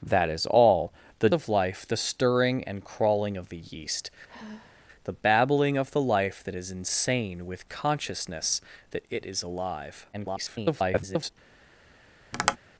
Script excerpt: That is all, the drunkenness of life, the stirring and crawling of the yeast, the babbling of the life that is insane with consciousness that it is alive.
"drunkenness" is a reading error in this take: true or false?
true